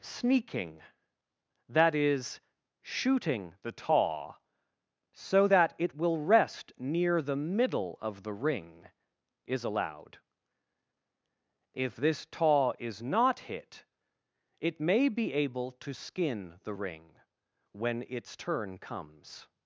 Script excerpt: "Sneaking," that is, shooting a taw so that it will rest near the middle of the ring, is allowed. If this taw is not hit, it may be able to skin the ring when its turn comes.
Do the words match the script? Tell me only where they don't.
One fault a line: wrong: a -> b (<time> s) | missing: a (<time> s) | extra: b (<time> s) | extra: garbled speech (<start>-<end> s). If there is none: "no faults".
wrong: a -> the (3.6 s)